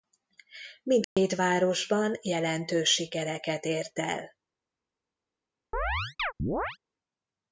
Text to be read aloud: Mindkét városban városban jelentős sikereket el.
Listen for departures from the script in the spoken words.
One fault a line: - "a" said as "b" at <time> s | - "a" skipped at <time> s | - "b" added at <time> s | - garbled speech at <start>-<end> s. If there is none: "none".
- "városban" skipped at 2.2 s
- "ért" added at 3.6 s